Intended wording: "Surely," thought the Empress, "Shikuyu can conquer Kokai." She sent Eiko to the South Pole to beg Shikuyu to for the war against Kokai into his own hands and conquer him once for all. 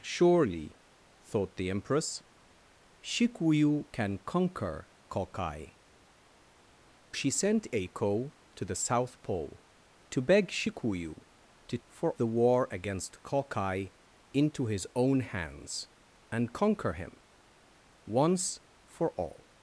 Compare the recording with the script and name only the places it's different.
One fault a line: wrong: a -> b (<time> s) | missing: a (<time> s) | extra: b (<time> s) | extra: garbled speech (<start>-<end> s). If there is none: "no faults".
no faults